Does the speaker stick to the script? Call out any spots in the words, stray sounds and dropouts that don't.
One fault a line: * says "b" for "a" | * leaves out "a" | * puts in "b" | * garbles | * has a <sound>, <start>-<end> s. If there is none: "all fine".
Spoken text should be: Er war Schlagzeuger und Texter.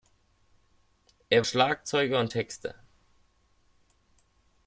* leaves out "war"